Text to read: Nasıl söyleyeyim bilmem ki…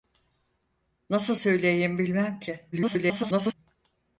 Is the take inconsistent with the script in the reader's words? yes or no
yes